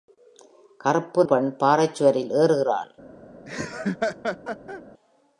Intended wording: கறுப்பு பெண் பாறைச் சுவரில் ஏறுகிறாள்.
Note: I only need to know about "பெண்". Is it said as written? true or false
true